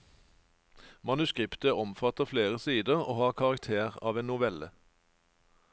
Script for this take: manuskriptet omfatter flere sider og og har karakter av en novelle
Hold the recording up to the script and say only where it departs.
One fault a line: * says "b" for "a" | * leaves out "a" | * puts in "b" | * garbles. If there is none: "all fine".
* leaves out "og"